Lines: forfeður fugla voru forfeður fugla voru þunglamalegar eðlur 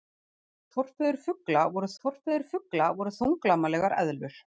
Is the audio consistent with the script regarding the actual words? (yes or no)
yes